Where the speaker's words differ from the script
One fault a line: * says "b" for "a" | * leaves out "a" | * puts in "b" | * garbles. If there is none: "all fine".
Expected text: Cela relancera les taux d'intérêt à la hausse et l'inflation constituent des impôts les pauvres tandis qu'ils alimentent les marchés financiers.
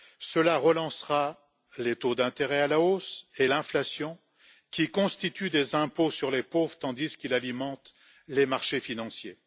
* puts in "qui"
* puts in "sur"